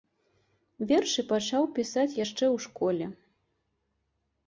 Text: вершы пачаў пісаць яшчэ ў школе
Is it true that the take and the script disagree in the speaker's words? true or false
false